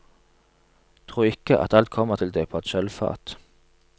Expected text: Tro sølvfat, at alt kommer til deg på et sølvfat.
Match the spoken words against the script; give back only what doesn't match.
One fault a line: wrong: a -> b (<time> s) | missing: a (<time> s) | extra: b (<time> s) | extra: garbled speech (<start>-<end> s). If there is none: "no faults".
wrong: sølvfat -> ikke (1.3 s)